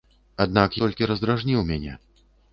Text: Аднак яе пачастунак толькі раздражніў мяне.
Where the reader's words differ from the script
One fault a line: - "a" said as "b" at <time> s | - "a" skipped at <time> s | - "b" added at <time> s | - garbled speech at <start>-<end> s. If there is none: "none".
- "яе пачастунак" skipped at 0.8 s